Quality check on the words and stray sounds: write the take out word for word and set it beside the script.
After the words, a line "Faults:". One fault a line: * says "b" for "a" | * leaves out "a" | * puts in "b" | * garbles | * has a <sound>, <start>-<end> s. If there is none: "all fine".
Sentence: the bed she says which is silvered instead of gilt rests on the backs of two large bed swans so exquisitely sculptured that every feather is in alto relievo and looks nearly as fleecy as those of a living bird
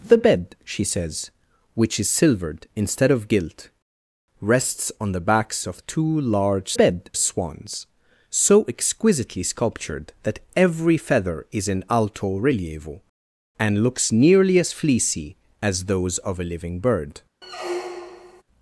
the bed she says which is silvered instead of gilt rests on the backs of two large bed swans so exquisitely sculptured that every feather is in alto relievo and looks nearly as fleecy as those of a living bird
Faults:
* has a squeak, 17.4-18.4 s